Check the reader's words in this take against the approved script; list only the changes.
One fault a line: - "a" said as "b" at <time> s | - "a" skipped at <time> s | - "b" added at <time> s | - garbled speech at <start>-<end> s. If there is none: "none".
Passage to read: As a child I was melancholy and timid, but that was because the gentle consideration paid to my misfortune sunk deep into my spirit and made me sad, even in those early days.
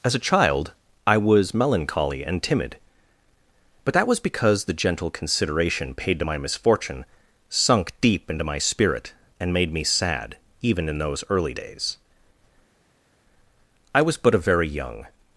- "I was but a very young" added at 13.9 s